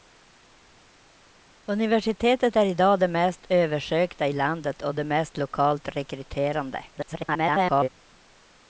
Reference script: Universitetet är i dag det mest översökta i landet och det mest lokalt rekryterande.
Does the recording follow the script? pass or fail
fail